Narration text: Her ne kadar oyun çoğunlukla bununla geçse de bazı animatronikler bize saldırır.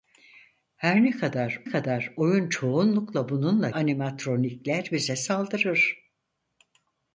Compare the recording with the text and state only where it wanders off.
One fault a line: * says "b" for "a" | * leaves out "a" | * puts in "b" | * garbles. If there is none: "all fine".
* puts in "kadar"
* leaves out "geçse de bazı"